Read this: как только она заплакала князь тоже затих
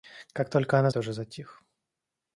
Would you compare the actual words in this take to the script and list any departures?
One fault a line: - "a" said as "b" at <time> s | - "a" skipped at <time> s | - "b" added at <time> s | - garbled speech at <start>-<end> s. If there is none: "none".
- "заплакала князь" skipped at 0.9 s